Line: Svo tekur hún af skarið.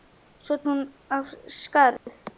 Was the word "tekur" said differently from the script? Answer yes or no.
yes